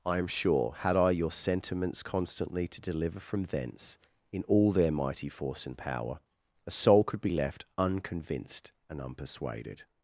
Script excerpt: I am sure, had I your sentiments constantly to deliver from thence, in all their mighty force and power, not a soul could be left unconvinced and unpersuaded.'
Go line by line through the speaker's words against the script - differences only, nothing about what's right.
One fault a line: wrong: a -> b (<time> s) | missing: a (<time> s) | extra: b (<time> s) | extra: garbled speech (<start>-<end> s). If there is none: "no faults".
missing: not (6.2 s)